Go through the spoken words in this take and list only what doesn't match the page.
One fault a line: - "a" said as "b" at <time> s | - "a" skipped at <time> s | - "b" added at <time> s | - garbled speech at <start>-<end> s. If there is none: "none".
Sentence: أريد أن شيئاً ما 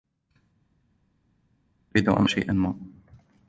none